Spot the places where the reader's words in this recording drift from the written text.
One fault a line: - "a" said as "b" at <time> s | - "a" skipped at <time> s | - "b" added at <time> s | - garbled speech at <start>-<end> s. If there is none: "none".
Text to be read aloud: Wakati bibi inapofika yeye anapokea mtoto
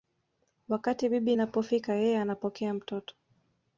none